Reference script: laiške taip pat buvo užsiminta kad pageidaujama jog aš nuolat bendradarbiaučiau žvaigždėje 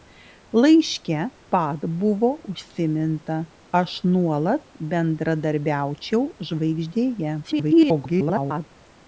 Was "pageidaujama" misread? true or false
true